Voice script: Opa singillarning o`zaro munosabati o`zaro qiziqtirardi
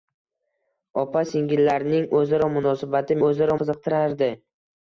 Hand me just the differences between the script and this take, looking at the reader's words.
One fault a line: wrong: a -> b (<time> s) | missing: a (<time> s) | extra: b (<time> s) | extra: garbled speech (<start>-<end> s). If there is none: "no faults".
no faults